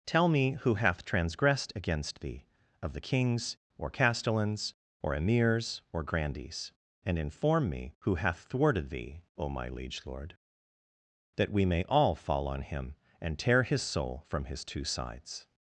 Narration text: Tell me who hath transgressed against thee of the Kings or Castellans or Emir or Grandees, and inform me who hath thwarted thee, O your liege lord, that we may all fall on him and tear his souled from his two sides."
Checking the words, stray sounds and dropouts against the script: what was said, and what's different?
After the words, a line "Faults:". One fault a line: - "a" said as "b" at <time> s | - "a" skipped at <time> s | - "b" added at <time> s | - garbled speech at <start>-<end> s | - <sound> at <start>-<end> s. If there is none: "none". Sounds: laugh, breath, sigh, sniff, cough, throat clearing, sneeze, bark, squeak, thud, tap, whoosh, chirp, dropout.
Tell me who hath transgressed against thee of the Kings or Castellans or Emirs or Grandees, and inform me who hath thwarted thee, O my liege lord, that we may all fall on him and tear his soul from his two sides."
Faults:
- "Emir" said as "Emirs" at 5.1 s
- "your" said as "my" at 9.5 s
- "souled" said as "soul" at 13.8 s